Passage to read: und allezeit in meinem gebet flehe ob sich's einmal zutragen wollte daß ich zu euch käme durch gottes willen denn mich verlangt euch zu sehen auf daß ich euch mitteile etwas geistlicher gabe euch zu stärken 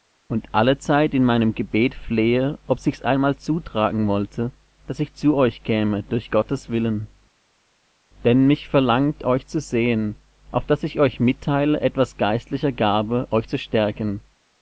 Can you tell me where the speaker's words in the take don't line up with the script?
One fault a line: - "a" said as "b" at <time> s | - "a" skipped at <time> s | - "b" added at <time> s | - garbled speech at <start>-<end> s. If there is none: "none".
none